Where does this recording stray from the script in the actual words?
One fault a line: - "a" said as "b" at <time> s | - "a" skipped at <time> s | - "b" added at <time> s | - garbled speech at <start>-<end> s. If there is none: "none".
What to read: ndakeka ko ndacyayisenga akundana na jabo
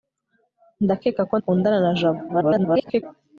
- "ndacyayisenga" skipped at 1.4 s
- garbled speech at 2.3-3.0 s